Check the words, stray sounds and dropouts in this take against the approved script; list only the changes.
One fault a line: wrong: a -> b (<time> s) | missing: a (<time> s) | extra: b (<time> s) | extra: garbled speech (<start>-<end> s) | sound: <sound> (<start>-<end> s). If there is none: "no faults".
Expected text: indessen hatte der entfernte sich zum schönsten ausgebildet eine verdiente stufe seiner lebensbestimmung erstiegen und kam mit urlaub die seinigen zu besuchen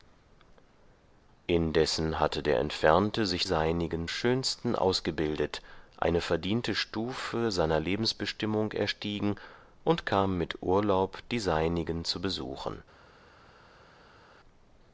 wrong: zum -> seinigen (3.4 s)